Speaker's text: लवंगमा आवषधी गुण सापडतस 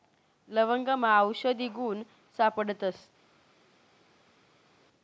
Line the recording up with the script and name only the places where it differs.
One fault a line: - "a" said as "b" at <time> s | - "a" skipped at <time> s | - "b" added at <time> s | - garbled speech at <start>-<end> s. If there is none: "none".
none